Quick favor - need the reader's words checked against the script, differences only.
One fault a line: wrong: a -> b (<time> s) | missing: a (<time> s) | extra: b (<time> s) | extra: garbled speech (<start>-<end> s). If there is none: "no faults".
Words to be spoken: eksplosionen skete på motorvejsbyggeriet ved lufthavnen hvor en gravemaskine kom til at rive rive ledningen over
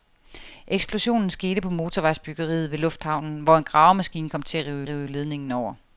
no faults